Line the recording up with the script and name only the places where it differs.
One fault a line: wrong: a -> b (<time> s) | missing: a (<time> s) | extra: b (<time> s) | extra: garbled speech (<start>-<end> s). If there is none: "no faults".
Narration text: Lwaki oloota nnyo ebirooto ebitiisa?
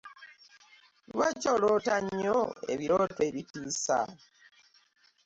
no faults